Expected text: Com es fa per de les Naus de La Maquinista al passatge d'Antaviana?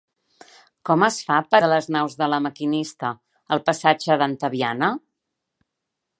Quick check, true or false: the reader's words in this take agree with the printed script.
true